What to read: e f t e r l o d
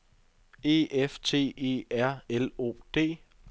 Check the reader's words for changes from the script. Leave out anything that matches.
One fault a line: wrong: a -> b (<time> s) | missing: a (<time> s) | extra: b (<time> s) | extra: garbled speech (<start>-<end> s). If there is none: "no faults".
no faults